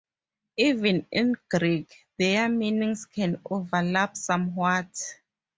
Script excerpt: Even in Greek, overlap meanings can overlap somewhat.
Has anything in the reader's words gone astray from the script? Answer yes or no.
yes